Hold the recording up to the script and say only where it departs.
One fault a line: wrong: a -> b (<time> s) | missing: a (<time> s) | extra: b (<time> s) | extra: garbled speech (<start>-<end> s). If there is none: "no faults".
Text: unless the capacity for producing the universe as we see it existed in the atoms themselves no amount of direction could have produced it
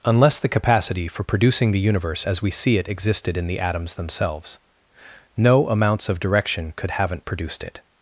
wrong: amount -> amounts (5.7 s)
wrong: have -> haven't (6.9 s)